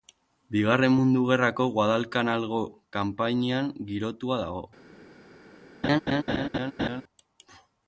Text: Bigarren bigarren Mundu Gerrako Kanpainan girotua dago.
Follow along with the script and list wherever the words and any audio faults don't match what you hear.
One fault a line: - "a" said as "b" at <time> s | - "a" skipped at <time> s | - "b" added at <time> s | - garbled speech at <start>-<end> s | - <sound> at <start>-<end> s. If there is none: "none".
- "bigarren" skipped at 0.9 s
- "Guadalcanalgo" added at 1.8 s
- laugh at 5.8-7.0 s